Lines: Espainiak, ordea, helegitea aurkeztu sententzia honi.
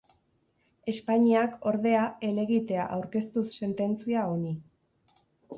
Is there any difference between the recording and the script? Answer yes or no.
no